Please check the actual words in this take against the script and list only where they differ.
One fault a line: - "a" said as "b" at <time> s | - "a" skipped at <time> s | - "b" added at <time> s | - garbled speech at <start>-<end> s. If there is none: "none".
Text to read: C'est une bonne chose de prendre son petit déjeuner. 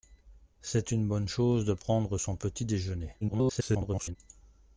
- garbled speech at 3.2-4.2 s